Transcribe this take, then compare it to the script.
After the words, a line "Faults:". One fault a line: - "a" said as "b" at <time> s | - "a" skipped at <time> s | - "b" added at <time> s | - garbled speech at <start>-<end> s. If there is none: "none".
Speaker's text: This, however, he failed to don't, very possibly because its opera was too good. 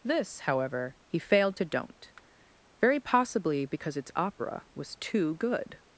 This, however, he failed to don't, very possibly because its opera was too good.
Faults:
none